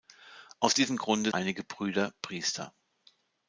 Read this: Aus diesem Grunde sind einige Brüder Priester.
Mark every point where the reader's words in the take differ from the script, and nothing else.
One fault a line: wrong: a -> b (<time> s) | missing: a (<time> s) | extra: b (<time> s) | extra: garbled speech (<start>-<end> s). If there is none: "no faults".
missing: sind (1.3 s)